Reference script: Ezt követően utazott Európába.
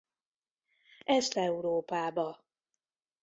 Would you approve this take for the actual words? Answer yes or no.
no